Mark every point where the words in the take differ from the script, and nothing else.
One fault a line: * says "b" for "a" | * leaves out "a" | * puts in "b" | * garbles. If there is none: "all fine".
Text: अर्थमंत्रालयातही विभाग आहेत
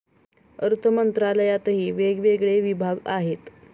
* puts in "वेगवेगळे"